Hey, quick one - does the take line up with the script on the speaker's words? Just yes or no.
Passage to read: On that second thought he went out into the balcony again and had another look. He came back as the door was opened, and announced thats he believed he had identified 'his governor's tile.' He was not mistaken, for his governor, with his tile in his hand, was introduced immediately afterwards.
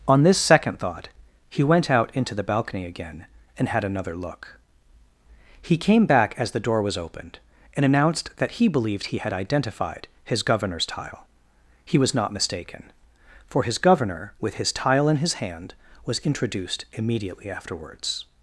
no